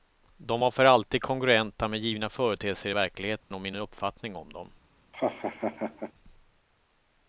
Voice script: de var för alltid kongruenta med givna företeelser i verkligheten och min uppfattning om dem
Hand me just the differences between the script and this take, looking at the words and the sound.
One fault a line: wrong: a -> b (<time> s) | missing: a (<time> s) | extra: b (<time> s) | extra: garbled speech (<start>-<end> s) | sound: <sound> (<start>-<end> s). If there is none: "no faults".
sound: dropout (3.4-3.5 s)
sound: laugh (5.1-6.1 s)